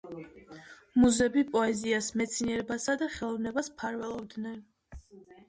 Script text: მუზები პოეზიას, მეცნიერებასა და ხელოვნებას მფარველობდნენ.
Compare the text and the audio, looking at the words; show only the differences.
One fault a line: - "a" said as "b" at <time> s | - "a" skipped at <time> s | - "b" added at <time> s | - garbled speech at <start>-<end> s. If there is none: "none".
none